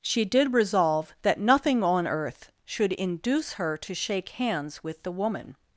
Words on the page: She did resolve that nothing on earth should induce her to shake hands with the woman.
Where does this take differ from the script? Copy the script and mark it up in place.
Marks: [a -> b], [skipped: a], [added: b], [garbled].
She did resolve that nothing on earth should induce her to shake hands with the woman.